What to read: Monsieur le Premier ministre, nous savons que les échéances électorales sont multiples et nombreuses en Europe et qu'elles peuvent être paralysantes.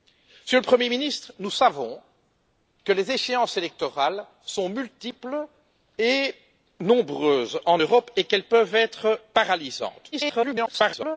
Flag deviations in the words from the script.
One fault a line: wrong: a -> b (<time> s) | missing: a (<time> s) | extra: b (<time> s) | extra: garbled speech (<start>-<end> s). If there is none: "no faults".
extra: garbled speech (10.1-11.2 s)